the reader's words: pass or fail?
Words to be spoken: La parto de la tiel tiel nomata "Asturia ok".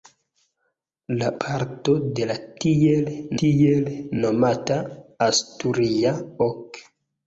pass